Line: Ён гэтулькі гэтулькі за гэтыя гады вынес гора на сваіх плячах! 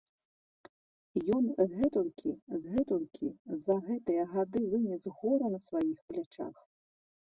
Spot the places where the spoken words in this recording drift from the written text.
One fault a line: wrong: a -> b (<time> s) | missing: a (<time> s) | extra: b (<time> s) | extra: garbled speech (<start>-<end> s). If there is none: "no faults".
no faults